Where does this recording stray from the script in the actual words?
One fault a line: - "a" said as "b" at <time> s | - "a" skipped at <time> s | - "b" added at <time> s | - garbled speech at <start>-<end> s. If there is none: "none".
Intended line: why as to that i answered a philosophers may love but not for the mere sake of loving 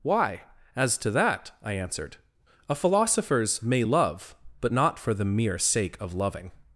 none